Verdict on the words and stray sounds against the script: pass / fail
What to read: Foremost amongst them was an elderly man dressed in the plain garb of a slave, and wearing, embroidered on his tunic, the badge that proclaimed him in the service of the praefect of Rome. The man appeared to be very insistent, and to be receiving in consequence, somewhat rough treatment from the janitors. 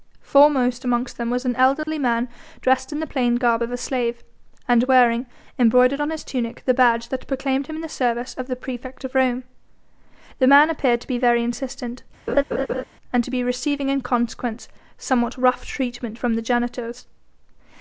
fail